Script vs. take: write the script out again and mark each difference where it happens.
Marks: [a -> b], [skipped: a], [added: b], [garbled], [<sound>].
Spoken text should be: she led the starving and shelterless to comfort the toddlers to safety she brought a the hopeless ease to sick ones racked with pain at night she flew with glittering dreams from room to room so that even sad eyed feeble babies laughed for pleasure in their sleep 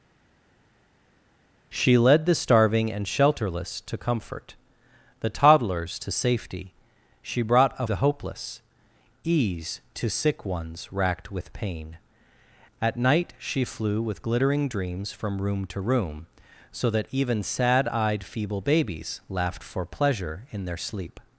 she led the starving and shelterless to comfort the toddlers to safety she brought a the hopeless ease to sick ones racked with pain at night she flew with glittering dreams from room to room so that even sad eyed feeble babies laughed for pleasure in their sleep